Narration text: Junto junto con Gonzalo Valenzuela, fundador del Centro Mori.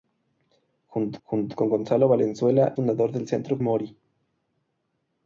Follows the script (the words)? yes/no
yes